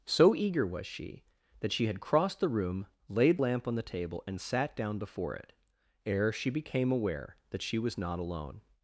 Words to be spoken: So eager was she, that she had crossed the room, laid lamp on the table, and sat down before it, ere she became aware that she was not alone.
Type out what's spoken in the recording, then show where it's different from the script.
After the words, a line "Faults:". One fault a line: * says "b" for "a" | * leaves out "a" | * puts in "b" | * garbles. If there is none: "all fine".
So eager was she, that she had crossed the room, laid lamp on the table, and sat down before it, ere she became aware that she was not alone.
Faults:
all fine